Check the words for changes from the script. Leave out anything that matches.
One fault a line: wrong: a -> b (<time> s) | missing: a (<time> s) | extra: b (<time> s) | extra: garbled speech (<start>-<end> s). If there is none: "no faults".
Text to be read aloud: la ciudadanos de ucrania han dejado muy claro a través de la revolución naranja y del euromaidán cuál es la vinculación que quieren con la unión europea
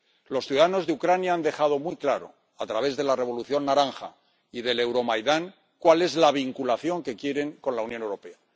wrong: la -> los (0.3 s)